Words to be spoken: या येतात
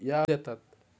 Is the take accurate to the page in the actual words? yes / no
yes